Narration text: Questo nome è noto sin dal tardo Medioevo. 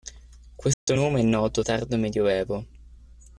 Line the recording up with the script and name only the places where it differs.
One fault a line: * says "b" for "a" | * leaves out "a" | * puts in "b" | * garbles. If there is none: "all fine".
* leaves out "sin dal"